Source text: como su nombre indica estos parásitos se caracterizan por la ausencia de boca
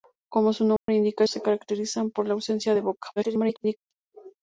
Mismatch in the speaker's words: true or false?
true